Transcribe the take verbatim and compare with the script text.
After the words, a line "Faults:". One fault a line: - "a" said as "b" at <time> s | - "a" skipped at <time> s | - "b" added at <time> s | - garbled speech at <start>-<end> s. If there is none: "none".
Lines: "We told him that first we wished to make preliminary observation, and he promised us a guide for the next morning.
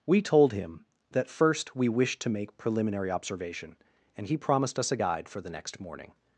"We told him that first we wished to make preliminary observation, and he promised us a guide for the next morning.
Faults:
none